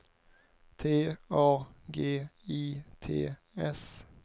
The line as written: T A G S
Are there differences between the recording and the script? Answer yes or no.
yes